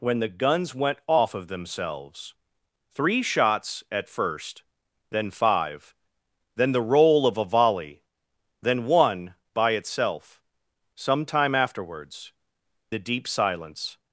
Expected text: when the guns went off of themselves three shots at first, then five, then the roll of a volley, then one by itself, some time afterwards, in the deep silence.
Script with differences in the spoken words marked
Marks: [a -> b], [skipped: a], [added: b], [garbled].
when the guns went off of themselves three shots at first, then five, then the roll of a volley, then one by itself, some time afterwards, [skipped: in] the deep silence.